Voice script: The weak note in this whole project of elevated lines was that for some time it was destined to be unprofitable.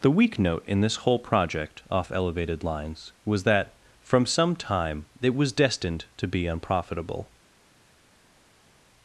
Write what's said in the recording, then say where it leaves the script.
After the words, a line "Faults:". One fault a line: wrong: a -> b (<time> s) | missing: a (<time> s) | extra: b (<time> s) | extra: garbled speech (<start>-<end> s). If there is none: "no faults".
The weak note in this whole project off elevated lines was that from some time it was destined to be unprofitable.
Faults:
wrong: of -> off (1.9 s)
wrong: for -> from (4.0 s)